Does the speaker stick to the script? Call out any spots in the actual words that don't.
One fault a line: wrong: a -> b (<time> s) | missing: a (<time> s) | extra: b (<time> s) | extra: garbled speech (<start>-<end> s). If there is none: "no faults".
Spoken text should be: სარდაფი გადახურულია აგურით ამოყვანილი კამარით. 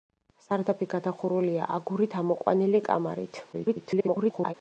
extra: garbled speech (3.5-4.5 s)